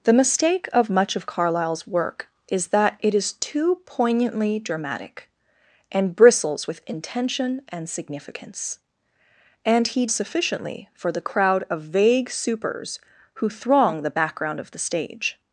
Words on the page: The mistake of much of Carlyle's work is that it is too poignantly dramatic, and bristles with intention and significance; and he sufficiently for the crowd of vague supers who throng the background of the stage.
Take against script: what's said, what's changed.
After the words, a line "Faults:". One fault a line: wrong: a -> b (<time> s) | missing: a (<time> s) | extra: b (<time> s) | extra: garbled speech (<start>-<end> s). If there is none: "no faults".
The mistake of much of Carlyle's work is that it is too poignantly dramatic, and bristles with intention and significance; and he sufficiently for the crowd of vague supers who throng the background of the stage.
Faults:
no faults